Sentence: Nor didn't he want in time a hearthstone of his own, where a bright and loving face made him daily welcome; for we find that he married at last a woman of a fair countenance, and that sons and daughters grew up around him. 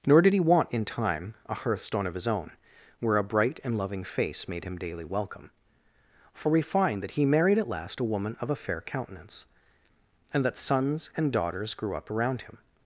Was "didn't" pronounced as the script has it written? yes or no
no